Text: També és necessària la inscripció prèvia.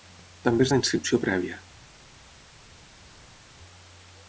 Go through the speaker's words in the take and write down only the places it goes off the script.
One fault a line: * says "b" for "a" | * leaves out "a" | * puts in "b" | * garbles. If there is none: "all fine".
* leaves out "necessària"